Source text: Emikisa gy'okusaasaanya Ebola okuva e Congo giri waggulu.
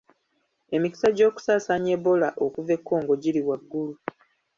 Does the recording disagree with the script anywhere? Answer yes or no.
no